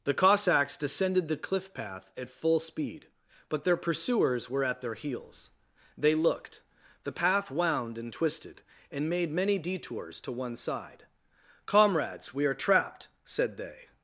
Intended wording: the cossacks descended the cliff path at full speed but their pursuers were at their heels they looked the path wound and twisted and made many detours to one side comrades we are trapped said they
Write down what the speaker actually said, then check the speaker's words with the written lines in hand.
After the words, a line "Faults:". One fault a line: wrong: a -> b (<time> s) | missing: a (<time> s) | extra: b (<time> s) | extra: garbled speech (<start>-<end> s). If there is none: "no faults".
the cossacks descended the cliff path at full speed but their pursuers were at their heels they looked the path wound and twisted and made many detours to one side comrades we are trapped said they
Faults:
no faults